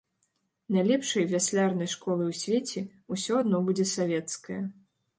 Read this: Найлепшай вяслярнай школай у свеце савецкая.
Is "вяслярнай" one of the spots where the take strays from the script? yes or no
no